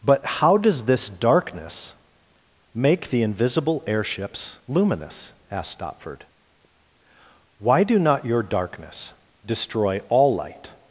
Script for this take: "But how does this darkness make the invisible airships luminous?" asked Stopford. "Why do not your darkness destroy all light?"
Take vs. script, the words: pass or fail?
pass